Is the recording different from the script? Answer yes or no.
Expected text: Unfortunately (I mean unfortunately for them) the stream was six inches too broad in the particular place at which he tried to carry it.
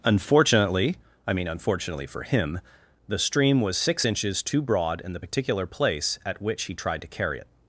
yes